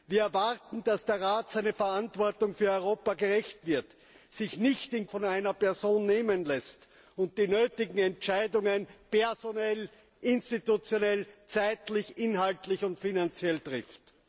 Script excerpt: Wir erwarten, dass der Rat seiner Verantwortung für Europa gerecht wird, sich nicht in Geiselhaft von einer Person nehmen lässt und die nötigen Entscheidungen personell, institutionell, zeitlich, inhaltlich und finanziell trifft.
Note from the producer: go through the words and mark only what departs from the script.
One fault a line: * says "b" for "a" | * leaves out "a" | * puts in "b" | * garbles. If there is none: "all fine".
* leaves out "Geiselhaft"